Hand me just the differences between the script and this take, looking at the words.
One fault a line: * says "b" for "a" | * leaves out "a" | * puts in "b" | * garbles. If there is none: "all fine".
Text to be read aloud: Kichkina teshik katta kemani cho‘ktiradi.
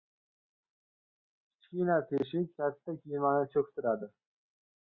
all fine